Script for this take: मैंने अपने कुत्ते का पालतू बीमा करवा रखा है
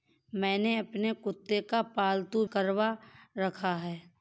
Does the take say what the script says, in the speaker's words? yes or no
no